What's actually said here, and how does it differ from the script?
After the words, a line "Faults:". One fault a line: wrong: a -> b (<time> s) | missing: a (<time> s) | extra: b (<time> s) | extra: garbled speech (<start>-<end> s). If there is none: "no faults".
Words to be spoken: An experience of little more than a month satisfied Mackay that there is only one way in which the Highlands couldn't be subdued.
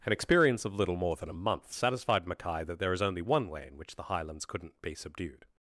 An experience of little more than a month satisfied Mackay that there is only one way in which the Highlands couldn't be subdued.
Faults:
no faults